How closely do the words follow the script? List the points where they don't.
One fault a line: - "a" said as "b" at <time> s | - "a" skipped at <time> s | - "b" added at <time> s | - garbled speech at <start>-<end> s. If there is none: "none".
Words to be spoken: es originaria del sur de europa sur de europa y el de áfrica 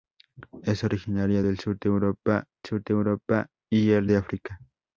none